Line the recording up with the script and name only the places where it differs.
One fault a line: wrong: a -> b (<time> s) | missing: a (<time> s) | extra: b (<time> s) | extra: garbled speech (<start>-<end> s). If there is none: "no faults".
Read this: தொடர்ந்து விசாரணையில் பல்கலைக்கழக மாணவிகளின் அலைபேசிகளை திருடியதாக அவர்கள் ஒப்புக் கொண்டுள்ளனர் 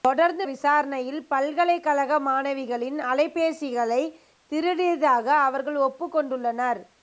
no faults